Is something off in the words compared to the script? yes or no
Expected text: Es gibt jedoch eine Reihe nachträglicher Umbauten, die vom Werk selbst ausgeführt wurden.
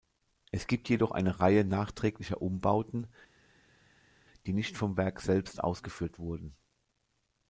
yes